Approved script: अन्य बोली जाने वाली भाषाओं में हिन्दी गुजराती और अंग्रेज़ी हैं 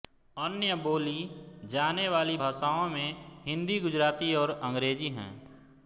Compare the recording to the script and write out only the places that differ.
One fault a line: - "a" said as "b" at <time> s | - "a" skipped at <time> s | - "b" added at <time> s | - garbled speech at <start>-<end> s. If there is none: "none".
none